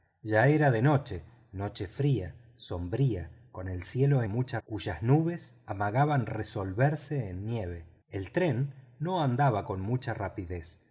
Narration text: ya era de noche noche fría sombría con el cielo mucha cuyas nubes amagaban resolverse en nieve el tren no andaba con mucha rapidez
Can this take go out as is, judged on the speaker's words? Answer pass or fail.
pass